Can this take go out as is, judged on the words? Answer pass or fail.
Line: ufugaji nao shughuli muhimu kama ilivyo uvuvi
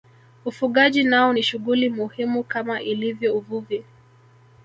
fail